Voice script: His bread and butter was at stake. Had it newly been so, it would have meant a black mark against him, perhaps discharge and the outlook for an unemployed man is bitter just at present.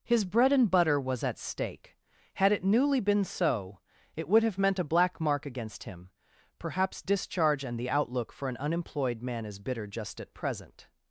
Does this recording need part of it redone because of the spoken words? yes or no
no